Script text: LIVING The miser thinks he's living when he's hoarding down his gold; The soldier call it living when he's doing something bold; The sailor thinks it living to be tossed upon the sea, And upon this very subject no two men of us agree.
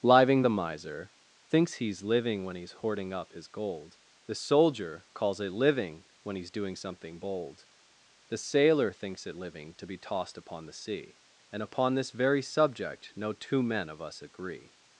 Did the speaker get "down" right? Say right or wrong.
wrong